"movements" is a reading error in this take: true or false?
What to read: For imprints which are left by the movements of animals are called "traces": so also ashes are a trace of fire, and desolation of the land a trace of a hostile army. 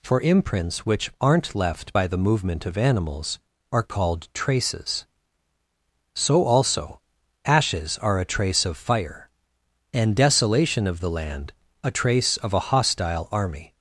true